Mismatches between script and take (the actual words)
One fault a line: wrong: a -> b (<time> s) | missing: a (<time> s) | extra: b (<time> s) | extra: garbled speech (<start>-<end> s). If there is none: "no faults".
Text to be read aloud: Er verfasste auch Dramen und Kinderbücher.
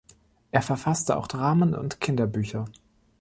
no faults